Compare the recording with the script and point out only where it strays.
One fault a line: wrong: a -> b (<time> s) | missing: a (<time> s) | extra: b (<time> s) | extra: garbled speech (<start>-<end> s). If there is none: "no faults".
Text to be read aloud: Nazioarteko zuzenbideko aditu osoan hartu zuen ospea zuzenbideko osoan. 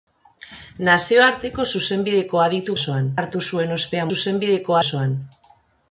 no faults